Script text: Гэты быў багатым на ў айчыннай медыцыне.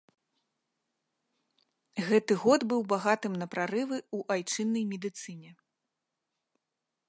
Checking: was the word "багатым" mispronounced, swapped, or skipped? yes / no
no